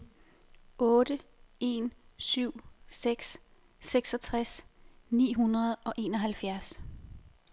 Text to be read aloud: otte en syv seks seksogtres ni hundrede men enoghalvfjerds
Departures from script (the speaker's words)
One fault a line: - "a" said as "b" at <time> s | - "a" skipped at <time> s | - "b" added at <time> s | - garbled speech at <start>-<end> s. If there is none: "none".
- "men" said as "og" at 5.7 s